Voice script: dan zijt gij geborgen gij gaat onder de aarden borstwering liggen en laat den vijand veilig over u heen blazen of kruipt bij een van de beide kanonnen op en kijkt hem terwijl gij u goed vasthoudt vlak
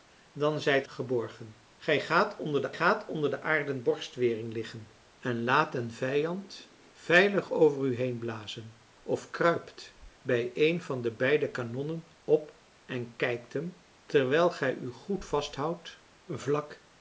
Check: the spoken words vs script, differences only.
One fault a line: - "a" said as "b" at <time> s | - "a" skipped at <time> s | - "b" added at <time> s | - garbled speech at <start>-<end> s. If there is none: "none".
- "geborgen" added at 0.8 s
- "geborgen gij" said as "gaat onder de" at 2.0 s